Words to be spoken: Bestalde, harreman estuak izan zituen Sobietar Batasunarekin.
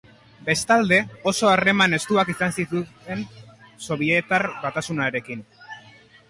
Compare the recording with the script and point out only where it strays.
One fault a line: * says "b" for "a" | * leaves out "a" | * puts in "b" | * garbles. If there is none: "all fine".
* puts in "oso"